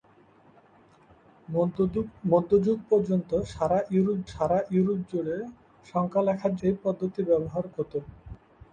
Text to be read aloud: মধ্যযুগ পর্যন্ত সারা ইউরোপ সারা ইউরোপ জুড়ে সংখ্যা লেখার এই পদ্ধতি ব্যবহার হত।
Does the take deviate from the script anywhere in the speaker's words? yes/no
no